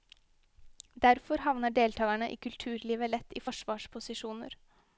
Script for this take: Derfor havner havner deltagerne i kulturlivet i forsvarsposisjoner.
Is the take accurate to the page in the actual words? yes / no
no